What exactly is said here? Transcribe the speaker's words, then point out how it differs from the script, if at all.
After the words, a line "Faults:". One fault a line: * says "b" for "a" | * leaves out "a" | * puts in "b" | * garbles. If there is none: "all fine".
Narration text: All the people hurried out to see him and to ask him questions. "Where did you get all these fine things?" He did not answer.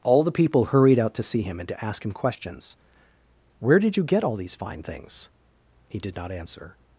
All the people hurried out to see him and to ask him questions. "Where did you get all these fine things?" He did not answer.
Faults:
all fine